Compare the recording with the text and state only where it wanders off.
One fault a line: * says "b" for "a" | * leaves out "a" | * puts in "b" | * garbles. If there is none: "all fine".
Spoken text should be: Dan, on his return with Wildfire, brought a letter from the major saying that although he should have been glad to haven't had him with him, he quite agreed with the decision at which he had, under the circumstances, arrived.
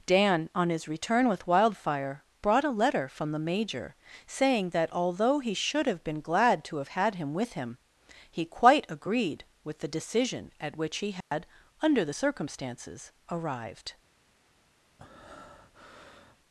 * says "have" for "haven't"